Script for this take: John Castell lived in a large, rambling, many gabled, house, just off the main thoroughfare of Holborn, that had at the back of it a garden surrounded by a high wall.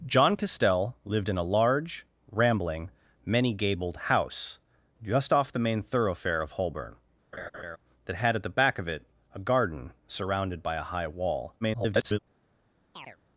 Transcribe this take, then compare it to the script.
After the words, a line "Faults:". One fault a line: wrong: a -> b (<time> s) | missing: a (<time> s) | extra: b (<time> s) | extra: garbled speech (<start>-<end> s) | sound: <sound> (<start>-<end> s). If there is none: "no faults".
John Castell lived in a large, rambling, many gabled, house, just off the main thoroughfare of Holborn, that had at the back of it a garden surrounded by a high wall. [garbled]
Faults:
sound: laugh (7.3-7.8 s)
extra: garbled speech (11.6-12.2 s)
sound: chirp (12.9-13.2 s)